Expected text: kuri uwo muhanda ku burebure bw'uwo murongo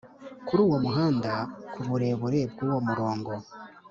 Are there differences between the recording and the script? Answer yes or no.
no